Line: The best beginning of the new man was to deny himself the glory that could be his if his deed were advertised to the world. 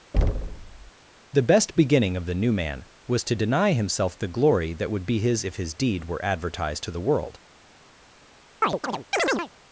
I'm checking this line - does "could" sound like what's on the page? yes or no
no